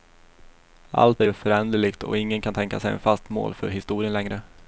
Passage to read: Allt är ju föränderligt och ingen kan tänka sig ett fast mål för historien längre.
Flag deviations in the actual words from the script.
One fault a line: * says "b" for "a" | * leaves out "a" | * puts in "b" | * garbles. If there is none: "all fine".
all fine